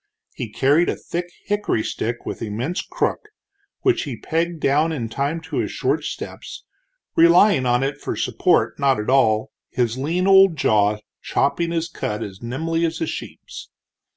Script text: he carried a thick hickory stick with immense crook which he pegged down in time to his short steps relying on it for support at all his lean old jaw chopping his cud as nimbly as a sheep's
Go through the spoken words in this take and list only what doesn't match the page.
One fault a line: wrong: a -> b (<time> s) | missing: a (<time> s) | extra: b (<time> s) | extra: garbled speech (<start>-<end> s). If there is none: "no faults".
extra: not (8.8 s)